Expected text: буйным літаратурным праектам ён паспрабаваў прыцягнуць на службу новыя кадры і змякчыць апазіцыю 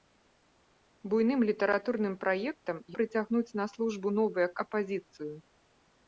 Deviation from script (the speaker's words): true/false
true